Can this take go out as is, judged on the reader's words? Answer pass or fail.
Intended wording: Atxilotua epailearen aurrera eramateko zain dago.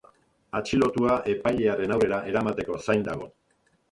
pass